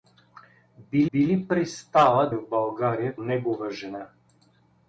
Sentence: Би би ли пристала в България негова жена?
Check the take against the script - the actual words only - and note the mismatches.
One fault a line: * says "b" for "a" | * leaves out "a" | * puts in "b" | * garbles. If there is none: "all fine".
all fine